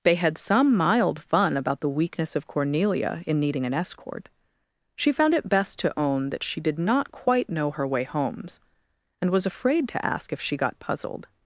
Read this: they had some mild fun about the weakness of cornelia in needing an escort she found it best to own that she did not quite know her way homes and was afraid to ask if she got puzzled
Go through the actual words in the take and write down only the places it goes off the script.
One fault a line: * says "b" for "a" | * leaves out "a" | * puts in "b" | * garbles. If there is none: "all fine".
all fine